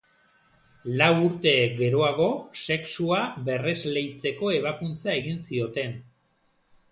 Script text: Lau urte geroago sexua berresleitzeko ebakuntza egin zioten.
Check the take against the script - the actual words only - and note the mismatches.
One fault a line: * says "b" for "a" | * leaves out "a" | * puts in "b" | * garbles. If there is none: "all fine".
all fine